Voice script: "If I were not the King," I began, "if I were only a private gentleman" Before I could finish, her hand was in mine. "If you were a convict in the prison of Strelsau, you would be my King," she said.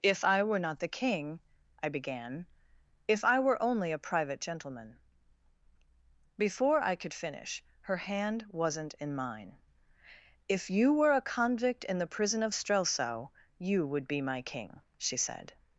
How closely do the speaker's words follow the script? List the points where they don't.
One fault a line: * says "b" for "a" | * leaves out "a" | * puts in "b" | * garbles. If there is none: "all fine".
* says "wasn't" for "was"